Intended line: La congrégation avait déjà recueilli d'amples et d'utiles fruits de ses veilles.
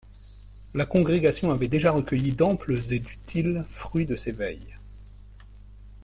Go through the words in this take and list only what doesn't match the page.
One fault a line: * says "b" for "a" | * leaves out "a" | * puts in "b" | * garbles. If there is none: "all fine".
all fine